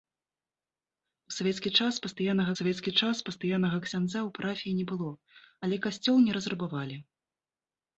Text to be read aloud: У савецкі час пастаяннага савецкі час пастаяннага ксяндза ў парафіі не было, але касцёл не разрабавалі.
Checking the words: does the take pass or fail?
pass